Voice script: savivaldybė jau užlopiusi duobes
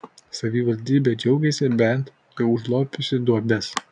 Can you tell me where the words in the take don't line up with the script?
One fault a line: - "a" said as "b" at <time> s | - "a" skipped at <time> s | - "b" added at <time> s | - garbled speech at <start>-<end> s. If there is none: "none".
- "džiaugiasi bent" added at 1.2 s